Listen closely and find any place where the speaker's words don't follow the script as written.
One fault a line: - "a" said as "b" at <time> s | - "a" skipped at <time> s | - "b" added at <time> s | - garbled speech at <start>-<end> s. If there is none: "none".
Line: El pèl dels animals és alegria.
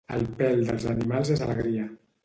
none